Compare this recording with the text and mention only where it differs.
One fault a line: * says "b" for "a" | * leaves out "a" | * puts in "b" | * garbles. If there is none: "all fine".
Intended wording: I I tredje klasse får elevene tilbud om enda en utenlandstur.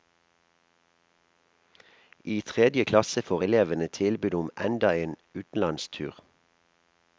* leaves out "I"